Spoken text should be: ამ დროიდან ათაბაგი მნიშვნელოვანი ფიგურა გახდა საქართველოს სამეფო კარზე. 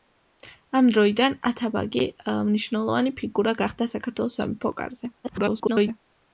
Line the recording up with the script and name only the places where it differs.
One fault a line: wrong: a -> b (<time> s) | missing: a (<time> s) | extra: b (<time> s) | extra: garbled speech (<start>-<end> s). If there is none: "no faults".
extra: garbled speech (5.2-6.0 s)